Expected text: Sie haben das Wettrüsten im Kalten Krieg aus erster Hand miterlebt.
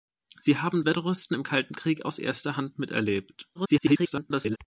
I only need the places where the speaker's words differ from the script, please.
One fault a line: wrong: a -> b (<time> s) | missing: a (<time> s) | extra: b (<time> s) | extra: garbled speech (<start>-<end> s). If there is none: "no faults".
missing: das (0.8 s)
extra: garbled speech (3.6-4.6 s)